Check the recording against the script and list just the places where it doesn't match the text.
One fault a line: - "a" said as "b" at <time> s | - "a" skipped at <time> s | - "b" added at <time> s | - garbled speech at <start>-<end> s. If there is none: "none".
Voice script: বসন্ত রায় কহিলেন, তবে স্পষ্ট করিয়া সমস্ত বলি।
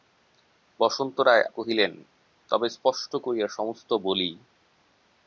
none